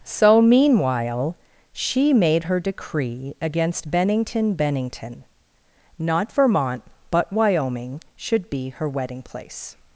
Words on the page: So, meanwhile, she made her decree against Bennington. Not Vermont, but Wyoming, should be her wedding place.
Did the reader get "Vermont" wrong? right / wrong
right